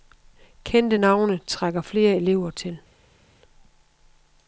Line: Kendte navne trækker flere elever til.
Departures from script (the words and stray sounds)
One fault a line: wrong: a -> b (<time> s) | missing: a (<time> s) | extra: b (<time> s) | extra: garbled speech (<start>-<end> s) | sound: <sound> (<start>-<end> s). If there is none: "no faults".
no faults